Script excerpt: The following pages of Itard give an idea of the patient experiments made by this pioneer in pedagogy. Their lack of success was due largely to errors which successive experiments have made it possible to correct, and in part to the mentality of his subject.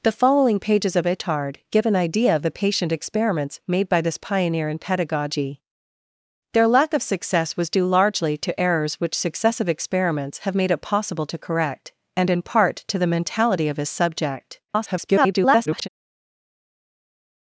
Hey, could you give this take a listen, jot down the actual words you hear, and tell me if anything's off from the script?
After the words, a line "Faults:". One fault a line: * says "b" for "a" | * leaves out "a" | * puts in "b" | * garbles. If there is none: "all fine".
The following pages of Itard give an idea of the patient experiments made by this pioneer in pedagogy. Their lack of success was due largely to errors which successive experiments have made it possible to correct, and in part to the mentality of his subject. [garbled]
Faults:
* garbles